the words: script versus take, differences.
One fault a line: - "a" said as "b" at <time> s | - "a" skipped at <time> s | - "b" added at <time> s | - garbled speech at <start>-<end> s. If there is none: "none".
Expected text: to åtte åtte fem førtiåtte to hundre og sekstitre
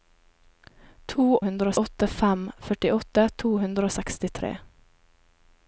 - "åtte" said as "hundre" at 1.5 s